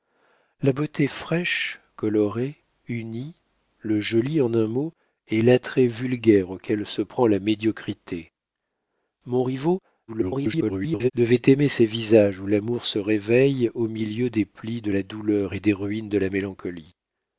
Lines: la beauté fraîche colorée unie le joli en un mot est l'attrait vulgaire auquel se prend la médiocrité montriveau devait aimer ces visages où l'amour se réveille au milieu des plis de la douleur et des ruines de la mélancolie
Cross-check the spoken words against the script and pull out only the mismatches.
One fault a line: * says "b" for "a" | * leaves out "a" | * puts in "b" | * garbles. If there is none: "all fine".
* garbles